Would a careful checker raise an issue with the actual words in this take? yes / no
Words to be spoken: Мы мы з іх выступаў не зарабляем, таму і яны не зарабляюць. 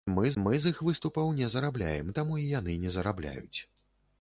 no